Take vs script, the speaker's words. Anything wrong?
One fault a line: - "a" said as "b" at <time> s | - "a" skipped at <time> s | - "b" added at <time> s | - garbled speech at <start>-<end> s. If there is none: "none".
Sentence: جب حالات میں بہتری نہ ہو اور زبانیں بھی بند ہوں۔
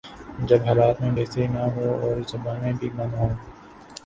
none